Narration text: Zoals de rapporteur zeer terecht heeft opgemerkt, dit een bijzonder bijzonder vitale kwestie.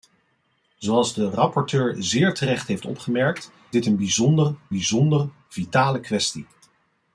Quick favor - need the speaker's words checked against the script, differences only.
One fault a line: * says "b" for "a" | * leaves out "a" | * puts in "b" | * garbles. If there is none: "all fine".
all fine